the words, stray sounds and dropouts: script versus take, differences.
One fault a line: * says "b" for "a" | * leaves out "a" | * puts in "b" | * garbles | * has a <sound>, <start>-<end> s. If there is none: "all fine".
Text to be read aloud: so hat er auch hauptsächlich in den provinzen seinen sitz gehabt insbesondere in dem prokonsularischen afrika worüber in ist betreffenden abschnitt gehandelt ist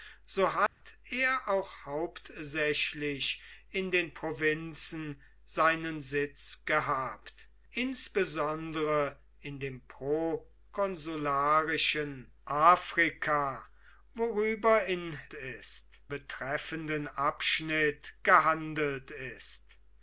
* has a dropout, 0.7-0.8 s